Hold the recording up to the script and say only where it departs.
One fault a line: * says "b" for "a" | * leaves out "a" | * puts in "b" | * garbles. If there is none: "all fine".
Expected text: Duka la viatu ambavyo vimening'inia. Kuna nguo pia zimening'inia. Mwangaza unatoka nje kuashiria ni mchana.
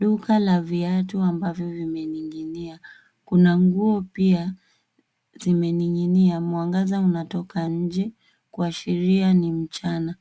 all fine